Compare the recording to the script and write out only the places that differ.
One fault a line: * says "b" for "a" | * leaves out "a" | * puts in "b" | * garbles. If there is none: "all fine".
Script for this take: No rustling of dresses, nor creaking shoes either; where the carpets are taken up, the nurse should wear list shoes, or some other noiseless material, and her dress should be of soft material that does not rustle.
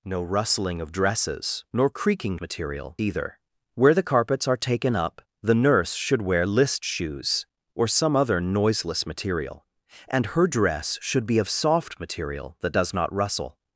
* says "material" for "shoes"